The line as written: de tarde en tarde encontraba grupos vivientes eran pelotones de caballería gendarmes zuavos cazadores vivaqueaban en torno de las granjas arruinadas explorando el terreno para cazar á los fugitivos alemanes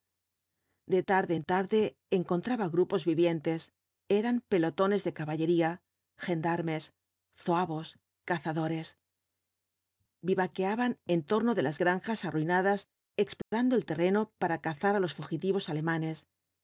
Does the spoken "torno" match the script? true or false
true